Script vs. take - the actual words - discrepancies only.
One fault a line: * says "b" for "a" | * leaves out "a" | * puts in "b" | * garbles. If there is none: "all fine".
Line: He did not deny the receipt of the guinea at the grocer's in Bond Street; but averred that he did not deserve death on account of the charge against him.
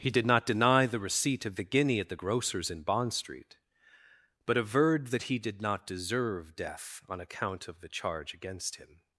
all fine